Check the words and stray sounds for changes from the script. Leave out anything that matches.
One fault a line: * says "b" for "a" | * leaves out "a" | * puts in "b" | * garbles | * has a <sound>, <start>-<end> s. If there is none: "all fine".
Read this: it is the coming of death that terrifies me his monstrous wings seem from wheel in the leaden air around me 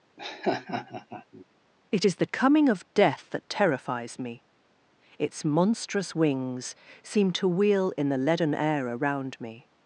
* has a laugh, 0.2-1.4 s
* says "its" for "his"
* says "to" for "from"